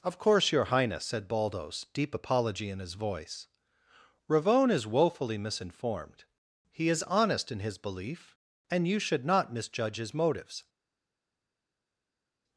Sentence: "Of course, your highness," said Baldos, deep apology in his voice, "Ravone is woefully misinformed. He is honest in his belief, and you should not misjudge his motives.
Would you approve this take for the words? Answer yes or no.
yes